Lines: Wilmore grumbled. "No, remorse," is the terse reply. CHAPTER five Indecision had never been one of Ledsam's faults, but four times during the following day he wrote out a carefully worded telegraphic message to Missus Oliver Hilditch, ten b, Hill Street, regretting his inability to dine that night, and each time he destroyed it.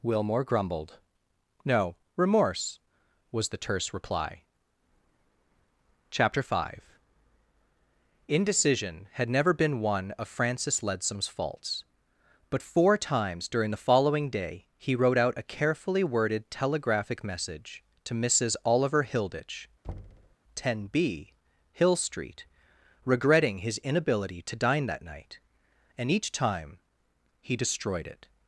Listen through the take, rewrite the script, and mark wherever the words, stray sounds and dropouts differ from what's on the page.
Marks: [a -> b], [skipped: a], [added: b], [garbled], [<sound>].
Wilmore grumbled. "No, remorse," [is -> was] the terse reply. CHAPTER five Indecision had never been one of [added: Francis] Ledsam's faults, but four times during the following day he wrote out a carefully worded telegraphic message to Missus Oliver Hilditch, [thud] ten b, Hill Street, regretting his inability to dine that night, and each time he destroyed it.